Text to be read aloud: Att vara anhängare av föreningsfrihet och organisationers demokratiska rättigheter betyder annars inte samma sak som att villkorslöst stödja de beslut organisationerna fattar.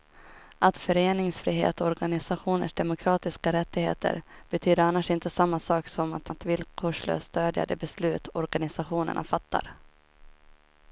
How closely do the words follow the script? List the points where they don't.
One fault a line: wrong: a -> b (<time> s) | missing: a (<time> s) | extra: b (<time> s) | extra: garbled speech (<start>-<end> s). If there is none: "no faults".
missing: vara anhängare av (0.8 s)
extra: att (6.3 s)